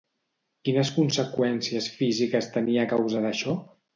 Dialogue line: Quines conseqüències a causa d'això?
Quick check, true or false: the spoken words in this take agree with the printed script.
false